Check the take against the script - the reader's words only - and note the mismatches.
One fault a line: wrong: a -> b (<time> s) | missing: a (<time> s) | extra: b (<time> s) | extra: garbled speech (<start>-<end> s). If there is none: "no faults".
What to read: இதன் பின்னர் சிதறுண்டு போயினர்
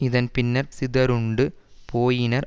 no faults